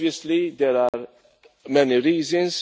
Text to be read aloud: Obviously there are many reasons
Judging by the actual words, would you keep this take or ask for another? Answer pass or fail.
pass